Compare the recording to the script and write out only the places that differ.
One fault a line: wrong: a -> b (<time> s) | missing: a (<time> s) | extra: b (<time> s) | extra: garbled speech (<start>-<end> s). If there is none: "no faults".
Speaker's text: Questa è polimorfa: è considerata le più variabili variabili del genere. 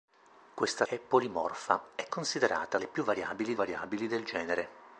no faults